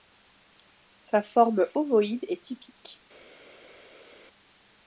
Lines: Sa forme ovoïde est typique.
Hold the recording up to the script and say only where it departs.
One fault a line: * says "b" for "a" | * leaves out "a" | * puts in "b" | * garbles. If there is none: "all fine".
all fine